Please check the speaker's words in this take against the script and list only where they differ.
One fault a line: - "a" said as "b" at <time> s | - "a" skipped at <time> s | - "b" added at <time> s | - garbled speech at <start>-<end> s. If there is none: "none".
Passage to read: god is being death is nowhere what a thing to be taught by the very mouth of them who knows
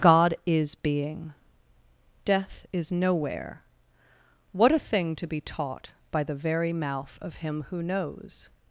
- "them" said as "him" at 7.3 s